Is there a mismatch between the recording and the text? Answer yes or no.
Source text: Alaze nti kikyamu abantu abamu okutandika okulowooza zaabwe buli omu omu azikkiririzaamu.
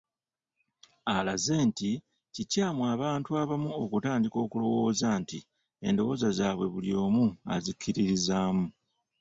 yes